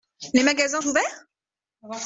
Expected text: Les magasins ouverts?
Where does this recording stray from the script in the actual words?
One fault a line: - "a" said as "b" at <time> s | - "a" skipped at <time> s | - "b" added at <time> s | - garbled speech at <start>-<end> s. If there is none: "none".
none